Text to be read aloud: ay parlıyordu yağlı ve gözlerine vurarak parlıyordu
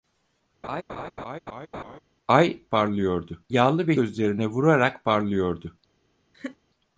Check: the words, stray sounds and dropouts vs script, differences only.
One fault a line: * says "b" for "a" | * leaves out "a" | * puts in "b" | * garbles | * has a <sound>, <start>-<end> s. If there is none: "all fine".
* has a laugh, 0.6-2.0 s
* has a laugh, 6.3-6.6 s